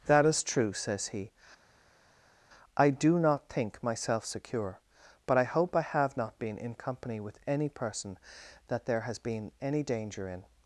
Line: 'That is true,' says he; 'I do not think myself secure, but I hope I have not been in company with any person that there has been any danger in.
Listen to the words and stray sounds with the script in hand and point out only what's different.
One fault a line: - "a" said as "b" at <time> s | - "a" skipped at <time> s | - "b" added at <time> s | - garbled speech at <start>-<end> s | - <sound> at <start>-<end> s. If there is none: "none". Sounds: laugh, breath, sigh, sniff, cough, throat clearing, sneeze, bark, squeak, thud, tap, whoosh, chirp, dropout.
none